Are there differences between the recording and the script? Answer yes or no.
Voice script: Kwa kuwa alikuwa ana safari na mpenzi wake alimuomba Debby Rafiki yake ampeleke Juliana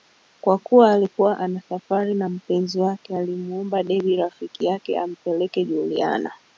no